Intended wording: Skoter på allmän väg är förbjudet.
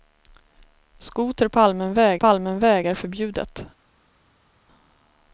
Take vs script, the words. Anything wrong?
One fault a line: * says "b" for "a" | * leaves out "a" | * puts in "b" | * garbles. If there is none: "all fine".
* puts in "på allmän väg"